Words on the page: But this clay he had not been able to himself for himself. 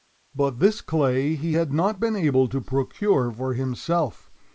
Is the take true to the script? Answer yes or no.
no